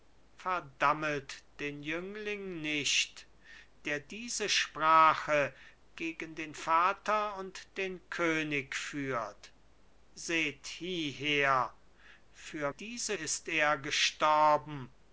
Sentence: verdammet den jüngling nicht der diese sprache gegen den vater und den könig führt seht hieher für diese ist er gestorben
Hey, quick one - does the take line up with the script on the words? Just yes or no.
yes